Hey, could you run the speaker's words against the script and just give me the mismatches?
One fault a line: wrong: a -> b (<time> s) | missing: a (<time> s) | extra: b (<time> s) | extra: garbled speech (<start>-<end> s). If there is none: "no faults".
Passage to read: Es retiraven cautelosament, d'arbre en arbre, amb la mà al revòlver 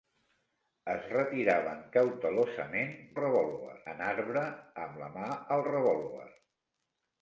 wrong: d'arbre -> revòlver (3.2 s)